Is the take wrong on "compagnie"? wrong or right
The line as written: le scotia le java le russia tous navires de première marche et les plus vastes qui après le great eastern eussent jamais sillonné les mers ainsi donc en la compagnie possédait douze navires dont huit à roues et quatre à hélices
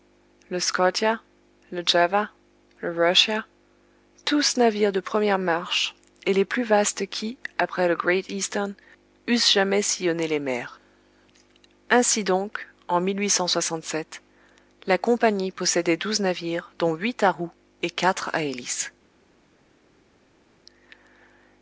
right